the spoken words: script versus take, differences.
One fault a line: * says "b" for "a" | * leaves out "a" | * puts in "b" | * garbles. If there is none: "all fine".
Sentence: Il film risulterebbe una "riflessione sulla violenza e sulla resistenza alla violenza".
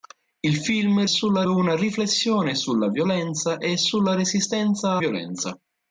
* says "sulla" for "risulterebbe"
* leaves out "alla"